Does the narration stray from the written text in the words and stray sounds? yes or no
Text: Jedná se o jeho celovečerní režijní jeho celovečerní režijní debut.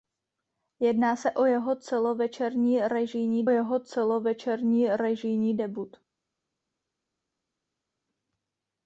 no